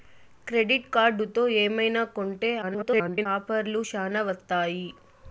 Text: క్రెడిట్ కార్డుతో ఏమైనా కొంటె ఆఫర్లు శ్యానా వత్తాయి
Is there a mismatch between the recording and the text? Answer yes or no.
yes